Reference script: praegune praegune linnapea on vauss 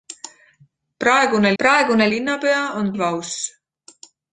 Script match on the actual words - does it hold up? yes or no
yes